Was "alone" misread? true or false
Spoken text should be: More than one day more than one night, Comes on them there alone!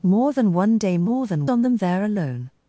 false